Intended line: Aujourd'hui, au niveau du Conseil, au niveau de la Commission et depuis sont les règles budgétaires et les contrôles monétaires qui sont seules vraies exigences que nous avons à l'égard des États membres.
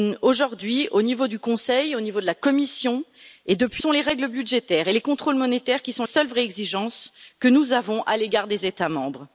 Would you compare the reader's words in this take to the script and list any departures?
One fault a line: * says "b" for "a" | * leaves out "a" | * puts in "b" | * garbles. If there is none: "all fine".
all fine